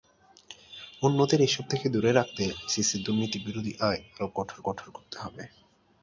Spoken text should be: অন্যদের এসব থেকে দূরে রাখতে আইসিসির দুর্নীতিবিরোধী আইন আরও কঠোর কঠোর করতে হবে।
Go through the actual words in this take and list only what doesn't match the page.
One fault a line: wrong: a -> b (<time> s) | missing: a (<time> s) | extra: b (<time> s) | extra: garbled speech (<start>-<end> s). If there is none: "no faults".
no faults